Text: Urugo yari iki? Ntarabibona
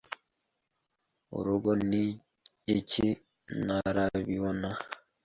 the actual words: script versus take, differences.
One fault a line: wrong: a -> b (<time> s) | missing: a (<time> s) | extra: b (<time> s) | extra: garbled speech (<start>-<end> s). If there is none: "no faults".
wrong: yari -> ni (1.9 s)